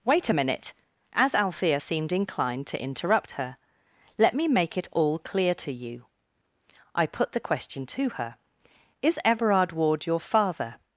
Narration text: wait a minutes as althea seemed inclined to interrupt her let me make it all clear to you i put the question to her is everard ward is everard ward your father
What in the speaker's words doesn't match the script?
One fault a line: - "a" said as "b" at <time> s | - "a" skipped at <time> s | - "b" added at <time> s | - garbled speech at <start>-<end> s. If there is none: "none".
- "minutes" said as "minute" at 0.3 s
- "is everard ward" skipped at 10.1 s